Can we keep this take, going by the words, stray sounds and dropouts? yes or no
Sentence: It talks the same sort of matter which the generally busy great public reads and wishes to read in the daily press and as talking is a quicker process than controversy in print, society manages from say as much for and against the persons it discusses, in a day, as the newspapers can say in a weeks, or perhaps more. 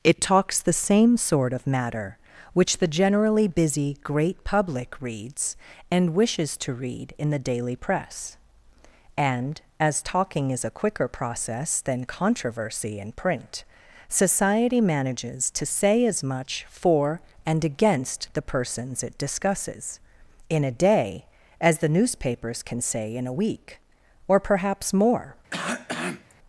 no